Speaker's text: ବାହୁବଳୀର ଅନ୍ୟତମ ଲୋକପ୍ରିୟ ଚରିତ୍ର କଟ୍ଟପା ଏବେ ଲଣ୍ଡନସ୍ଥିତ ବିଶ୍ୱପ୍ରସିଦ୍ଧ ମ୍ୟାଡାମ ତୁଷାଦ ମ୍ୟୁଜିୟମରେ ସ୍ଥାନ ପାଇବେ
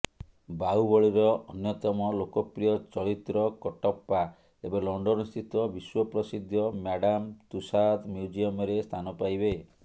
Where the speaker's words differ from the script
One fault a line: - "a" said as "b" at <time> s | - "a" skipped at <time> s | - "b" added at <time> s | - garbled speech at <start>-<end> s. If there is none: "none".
none